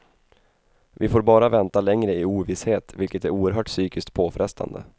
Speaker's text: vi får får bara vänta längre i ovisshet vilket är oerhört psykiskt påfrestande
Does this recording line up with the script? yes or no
no